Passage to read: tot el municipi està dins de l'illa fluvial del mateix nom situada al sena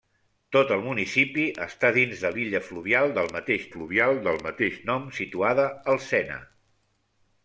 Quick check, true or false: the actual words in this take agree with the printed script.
false